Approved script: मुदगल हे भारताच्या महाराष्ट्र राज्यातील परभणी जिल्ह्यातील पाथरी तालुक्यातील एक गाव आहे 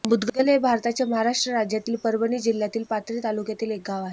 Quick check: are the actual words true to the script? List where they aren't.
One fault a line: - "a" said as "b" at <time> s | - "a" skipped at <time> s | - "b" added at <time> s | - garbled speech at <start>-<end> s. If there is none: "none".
none